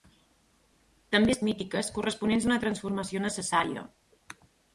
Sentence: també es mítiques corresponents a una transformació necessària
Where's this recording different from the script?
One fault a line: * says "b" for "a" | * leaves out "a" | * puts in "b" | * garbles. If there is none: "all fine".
all fine